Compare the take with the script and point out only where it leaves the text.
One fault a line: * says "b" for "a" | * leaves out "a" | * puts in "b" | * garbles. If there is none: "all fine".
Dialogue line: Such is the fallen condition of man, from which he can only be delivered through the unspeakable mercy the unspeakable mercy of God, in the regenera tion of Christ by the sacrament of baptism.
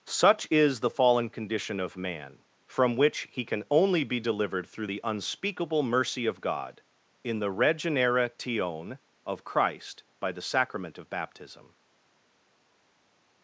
* leaves out "the unspeakable mercy"